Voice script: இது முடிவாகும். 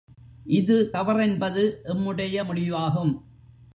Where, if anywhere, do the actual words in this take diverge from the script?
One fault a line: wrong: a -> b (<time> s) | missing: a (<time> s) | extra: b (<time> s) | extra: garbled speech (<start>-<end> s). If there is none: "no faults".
extra: தவறென்பது எம்முடைய (0.9 s)